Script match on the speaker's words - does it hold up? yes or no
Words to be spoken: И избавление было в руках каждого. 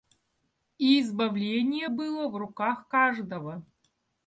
yes